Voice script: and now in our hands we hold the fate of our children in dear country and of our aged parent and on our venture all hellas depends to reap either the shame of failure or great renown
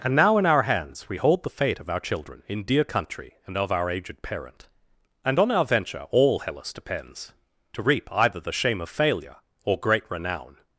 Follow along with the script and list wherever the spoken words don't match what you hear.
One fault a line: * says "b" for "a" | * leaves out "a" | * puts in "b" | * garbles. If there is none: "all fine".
all fine